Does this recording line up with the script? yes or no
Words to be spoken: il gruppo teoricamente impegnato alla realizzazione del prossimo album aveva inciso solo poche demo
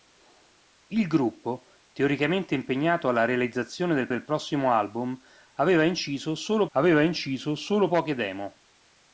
no